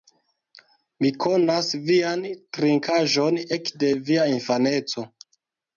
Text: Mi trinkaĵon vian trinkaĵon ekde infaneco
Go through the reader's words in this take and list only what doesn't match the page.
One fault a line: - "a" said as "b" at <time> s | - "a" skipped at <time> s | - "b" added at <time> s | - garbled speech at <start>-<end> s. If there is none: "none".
- "trinkaĵon" said as "konas" at 1.2 s
- "via" added at 4.1 s